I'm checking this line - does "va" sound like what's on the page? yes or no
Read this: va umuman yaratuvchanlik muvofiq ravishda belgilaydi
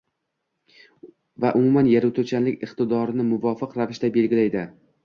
yes